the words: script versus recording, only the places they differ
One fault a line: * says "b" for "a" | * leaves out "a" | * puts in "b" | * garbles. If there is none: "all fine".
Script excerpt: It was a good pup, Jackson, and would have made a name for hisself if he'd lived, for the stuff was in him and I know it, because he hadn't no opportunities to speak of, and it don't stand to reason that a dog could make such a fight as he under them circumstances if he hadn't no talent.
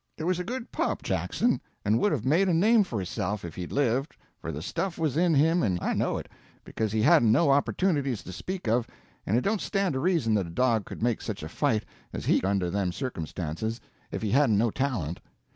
all fine